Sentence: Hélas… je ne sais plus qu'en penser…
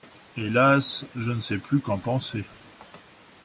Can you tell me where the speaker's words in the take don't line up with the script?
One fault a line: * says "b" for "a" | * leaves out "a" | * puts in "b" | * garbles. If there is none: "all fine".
all fine